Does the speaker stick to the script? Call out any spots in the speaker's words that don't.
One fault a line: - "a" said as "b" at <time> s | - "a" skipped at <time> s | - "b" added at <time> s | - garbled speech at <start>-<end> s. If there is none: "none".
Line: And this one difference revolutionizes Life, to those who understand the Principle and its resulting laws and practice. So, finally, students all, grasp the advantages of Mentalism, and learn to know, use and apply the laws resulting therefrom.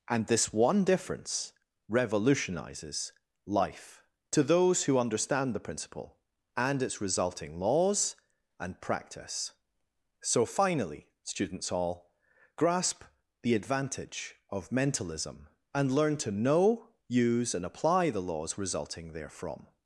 - "advantages" said as "advantage" at 13.6 s